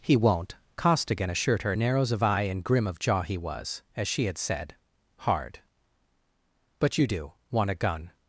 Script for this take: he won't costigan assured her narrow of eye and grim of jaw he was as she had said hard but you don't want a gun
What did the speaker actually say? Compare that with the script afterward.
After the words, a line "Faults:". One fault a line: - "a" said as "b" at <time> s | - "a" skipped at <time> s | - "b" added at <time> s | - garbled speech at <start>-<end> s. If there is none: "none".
he won't costigan assured her narrows of eye and grim of jaw he was as she had said hard but you do want a gun
Faults:
- "narrow" said as "narrows" at 1.7 s
- "don't" said as "do" at 7.0 s